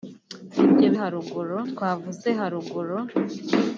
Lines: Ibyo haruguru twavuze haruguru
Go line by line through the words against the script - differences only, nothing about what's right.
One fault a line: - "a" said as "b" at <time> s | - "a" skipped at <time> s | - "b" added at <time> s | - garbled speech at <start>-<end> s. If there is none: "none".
none